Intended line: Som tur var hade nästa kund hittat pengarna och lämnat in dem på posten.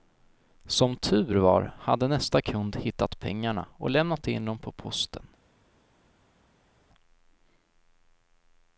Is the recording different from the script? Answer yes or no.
no